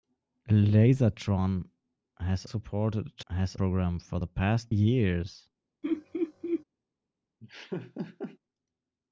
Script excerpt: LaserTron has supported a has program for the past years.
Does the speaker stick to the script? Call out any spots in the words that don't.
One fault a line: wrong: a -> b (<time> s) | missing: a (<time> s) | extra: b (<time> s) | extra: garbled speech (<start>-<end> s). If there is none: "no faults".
no faults